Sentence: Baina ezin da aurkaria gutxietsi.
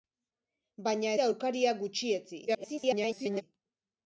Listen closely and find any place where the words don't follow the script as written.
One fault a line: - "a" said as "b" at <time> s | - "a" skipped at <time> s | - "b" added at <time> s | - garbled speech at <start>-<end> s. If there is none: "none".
- "ezin" skipped at 1.1 s
- garbled speech at 2.5-3.4 s